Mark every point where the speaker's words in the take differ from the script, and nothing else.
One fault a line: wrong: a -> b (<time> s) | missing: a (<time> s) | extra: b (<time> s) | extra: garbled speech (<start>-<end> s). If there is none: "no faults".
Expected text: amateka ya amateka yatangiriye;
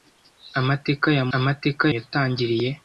no faults